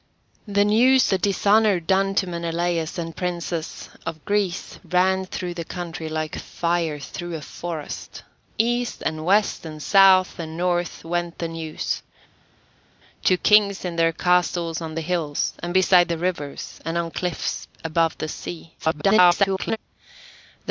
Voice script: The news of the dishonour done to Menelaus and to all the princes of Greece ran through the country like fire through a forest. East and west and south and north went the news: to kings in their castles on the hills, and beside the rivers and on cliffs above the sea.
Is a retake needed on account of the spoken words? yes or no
yes